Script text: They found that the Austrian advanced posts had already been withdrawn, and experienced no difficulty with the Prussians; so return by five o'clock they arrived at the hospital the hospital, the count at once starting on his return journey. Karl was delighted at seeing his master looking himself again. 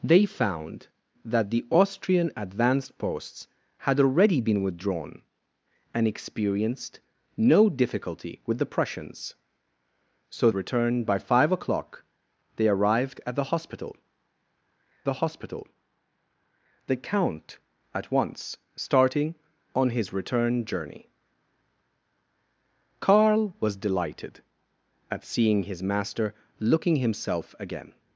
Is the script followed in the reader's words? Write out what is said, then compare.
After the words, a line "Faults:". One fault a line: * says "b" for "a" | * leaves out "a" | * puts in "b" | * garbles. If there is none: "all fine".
They found that the Austrian advanced posts had already been withdrawn, and experienced no difficulty with the Prussians; so return by five o'clock they arrived at the hospital the hospital, the count at once starting on his return journey. Karl was delighted at seeing his master looking himself again.
Faults:
all fine